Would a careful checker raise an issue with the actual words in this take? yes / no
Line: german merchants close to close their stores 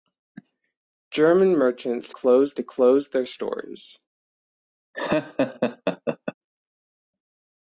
no